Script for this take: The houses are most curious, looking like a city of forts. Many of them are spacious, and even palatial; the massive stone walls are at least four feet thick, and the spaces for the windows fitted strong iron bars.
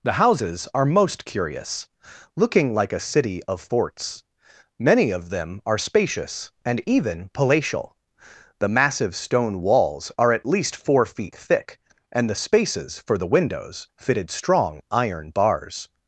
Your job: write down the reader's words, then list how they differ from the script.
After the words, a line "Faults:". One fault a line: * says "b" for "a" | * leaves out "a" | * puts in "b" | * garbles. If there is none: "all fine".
The houses are most curious, looking like a city of forts. Many of them are spacious, and even palatial; the massive stone walls are at least four feet thick, and the spaces for the windows fitted strong iron bars.
Faults:
all fine